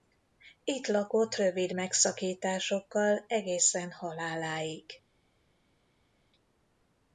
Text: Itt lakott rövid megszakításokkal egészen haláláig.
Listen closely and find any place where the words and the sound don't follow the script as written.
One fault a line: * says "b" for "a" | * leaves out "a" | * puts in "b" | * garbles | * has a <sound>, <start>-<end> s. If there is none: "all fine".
all fine